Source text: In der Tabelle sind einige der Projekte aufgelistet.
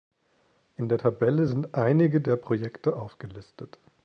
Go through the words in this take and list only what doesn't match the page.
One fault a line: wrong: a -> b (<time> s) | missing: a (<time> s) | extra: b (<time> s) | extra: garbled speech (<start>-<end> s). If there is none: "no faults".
no faults